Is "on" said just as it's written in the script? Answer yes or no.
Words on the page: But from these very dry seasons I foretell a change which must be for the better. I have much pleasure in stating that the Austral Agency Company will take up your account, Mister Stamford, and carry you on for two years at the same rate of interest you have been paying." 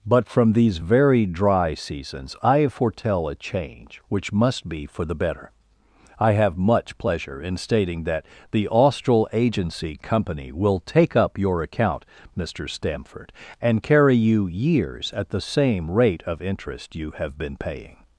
no